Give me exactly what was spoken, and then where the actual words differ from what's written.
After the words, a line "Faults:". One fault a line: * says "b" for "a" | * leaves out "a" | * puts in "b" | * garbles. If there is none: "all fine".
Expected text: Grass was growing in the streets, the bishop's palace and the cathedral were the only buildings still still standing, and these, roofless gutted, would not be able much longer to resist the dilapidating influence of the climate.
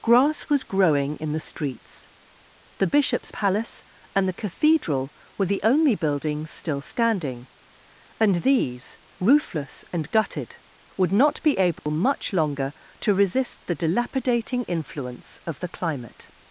Grass was growing in the streets, the bishop's palace and the cathedral were the only buildings still standing, and these, roofless and gutted, would not be able much longer to resist the dilapidating influence of the climate.
Faults:
* leaves out "still"
* puts in "and"